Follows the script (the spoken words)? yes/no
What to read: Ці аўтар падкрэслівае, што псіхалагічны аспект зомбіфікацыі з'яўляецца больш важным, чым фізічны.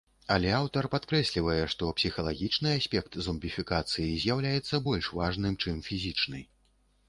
no